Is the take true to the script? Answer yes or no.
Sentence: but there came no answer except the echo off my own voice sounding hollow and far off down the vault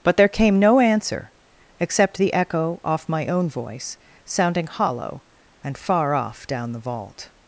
yes